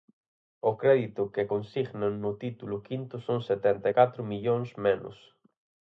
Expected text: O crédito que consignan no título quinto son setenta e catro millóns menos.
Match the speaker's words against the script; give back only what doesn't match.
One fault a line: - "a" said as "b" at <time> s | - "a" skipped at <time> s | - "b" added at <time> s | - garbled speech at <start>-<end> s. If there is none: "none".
none